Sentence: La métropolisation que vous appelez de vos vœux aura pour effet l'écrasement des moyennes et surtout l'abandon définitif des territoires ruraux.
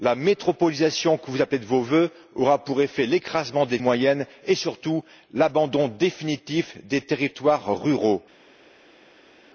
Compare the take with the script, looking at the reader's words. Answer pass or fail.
pass